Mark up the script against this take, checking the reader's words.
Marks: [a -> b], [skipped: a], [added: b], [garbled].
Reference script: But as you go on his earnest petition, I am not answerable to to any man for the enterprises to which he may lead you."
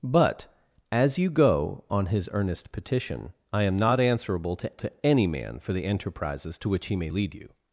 But as you go on his earnest petition, I am not answerable to to any man for the enterprises to which he may lead you."